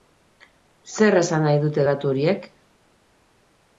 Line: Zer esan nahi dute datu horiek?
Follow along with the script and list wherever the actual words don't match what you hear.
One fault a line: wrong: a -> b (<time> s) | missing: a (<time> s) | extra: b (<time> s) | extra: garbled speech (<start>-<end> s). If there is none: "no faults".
no faults